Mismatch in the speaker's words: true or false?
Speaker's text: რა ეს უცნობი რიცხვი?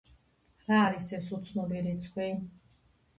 true